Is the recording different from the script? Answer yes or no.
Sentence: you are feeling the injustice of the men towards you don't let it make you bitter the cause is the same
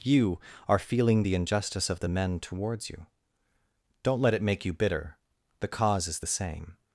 no